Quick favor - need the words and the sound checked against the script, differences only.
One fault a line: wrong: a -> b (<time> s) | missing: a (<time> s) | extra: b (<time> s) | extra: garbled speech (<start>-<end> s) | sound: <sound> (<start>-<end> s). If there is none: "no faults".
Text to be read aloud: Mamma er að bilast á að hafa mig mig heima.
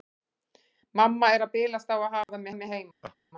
sound: dropout (2.2-2.3 s)
sound: laugh (3.0-3.2 s)